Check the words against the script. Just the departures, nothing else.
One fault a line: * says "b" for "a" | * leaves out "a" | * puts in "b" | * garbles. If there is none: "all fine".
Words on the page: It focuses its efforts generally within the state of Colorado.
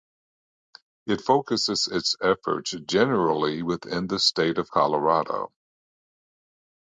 all fine